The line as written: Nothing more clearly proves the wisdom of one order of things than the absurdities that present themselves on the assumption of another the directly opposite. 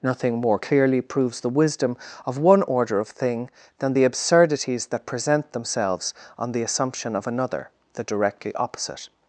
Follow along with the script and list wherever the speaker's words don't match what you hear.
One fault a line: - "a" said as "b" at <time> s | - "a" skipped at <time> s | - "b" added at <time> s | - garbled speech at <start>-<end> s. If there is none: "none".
- "things" said as "thing" at 3.1 s